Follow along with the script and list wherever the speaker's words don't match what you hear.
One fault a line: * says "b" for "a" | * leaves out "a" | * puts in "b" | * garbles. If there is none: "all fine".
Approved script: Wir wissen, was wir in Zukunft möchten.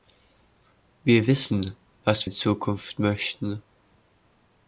* leaves out "wir"